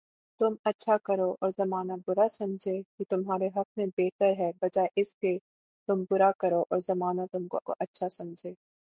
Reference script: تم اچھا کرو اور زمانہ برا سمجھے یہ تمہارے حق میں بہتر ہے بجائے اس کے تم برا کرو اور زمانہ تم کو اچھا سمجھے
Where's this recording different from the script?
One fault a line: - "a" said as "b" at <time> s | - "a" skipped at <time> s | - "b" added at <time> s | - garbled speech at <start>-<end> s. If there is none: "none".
- "کو" added at 7.6 s